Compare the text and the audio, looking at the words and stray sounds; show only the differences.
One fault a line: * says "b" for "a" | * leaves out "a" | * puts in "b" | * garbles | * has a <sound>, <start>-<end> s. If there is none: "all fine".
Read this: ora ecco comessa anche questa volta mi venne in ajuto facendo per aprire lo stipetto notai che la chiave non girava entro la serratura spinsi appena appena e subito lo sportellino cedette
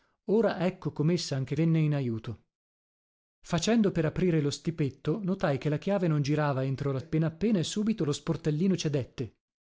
* leaves out "questa volta mi"
* leaves out "serratura spinsi"